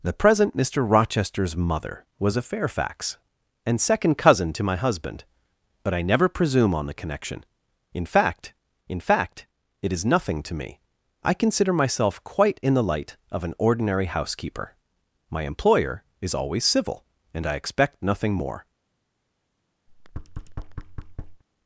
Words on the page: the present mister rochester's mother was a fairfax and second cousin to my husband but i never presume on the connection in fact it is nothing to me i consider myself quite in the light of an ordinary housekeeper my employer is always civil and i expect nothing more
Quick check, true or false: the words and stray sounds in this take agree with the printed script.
false